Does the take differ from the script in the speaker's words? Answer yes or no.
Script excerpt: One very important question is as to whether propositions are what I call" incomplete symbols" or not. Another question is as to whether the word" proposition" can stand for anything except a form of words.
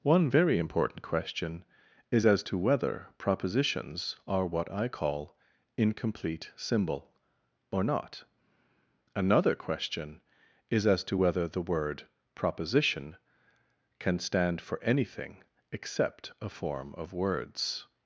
yes